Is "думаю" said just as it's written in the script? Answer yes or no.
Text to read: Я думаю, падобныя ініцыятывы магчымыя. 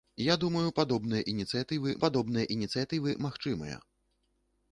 yes